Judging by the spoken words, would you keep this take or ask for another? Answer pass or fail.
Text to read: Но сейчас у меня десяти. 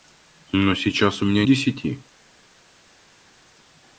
pass